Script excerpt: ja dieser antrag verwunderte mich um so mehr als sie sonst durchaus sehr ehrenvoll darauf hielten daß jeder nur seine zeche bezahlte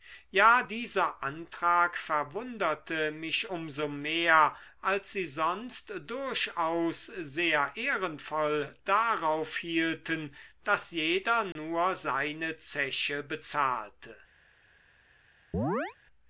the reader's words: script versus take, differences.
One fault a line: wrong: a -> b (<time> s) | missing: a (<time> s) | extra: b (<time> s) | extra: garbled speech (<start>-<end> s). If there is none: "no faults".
no faults